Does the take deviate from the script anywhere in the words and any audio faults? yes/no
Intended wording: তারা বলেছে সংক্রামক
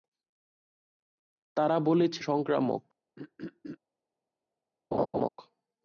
yes